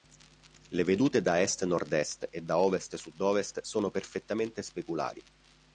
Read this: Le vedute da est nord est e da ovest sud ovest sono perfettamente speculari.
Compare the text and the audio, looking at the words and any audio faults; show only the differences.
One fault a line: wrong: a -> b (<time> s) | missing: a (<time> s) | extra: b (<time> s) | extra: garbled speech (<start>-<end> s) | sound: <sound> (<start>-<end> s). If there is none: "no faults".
no faults